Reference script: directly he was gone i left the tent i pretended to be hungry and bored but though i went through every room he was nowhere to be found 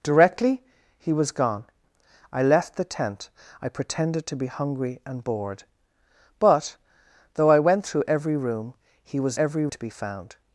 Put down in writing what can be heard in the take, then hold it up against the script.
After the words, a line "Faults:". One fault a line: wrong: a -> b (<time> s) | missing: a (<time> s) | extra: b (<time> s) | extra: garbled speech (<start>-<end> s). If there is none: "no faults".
directly he was gone i left the tent i pretended to be hungry and bored but though i went through every room he was every to be found
Faults:
wrong: nowhere -> every (9.4 s)